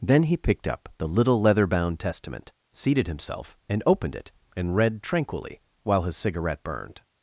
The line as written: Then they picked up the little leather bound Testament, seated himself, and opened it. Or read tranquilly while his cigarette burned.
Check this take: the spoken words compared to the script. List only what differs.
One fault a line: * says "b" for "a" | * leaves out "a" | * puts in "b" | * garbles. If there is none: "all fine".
* says "he" for "they"
* says "And" for "Or"